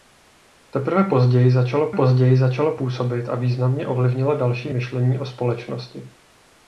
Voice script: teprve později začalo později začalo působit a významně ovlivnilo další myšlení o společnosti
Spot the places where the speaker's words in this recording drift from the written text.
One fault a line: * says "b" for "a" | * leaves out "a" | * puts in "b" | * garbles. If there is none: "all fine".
all fine